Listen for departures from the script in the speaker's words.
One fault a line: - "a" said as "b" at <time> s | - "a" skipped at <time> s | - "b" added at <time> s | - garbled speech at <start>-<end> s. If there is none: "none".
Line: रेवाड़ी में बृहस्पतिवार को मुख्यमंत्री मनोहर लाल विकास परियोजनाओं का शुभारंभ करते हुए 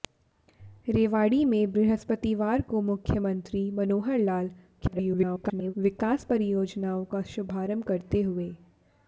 - garbled speech at 4.8-5.7 s